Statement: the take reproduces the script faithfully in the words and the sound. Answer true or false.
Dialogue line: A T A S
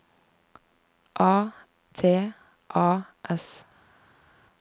true